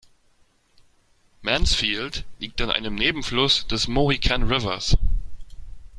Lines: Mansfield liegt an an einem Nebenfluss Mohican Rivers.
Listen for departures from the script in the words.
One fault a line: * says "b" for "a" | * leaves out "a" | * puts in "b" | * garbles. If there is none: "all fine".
* leaves out "an"
* puts in "des"